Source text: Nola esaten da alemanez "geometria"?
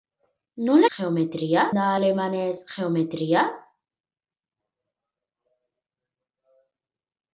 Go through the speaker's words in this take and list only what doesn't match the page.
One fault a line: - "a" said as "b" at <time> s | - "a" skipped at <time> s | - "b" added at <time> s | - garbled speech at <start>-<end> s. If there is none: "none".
- "esaten" said as "geometria" at 0.9 s